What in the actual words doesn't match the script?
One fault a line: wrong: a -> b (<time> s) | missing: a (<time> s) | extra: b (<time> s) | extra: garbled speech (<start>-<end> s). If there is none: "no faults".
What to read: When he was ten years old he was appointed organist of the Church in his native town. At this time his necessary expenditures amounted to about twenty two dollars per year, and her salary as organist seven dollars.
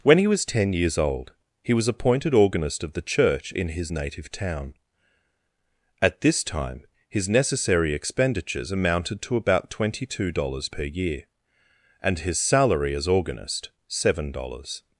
wrong: her -> his (12.2 s)